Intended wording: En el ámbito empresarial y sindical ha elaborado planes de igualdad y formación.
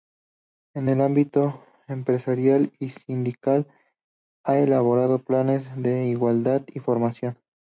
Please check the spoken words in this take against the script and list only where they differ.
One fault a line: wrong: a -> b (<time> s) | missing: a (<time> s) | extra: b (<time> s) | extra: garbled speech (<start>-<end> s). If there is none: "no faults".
no faults